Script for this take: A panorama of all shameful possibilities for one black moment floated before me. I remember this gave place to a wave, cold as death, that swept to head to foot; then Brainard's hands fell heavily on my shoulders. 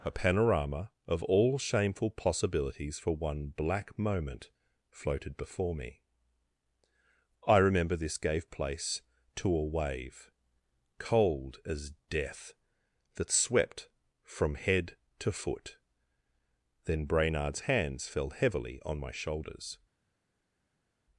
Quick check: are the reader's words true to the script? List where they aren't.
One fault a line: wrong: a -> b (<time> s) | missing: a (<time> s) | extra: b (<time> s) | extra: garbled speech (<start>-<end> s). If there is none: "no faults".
wrong: to -> from (14.2 s)